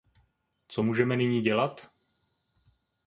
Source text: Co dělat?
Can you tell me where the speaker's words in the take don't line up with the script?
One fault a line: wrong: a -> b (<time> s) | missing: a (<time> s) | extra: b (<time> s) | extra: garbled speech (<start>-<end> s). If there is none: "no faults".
extra: můžeme nyní (0.8 s)